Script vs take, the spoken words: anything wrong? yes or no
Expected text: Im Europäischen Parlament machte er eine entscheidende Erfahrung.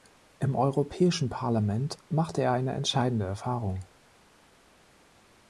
no